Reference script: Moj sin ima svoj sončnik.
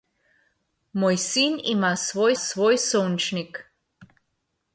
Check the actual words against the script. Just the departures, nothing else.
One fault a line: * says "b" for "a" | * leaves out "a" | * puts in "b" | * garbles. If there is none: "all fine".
* puts in "svoj"